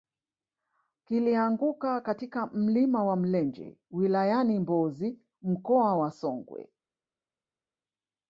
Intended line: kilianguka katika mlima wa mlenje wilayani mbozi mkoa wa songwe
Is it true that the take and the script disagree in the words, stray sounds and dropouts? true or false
false